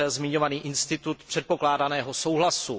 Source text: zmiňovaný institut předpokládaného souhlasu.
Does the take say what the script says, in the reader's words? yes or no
yes